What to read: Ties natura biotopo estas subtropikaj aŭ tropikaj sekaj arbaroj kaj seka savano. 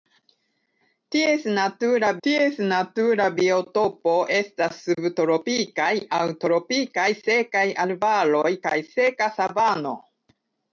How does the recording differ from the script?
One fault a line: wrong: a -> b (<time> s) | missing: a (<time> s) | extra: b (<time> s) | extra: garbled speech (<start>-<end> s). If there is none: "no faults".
extra: ties natura (2.3 s)